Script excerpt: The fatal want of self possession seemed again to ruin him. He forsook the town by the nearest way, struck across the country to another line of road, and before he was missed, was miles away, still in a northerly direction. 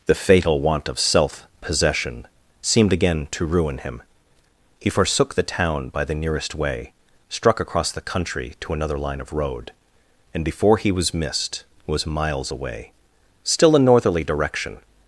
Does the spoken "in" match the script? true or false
false